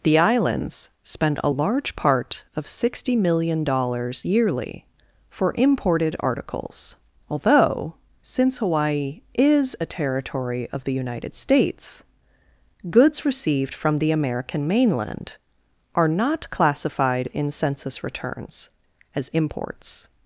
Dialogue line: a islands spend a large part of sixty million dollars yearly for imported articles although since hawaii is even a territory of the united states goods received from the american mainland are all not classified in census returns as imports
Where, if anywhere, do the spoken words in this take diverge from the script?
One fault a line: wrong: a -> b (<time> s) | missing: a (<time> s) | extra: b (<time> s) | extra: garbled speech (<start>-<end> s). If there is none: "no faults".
wrong: a -> the (0.0 s)
missing: even (9.7 s)
missing: all (16.1 s)